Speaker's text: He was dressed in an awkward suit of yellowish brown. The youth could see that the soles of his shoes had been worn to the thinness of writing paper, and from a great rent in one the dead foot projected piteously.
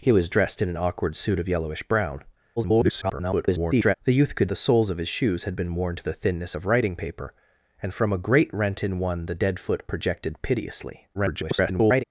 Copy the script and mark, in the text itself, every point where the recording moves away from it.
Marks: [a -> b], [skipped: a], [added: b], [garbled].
He was dressed in an awkward suit of yellowish brown. [garbled] The youth could [skipped: see that] the soles of his shoes had been worn to the thinness of writing paper, and from a great rent in one the dead foot projected piteously. [garbled]